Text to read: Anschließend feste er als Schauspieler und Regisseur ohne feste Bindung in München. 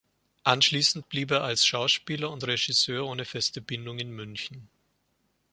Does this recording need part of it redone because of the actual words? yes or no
yes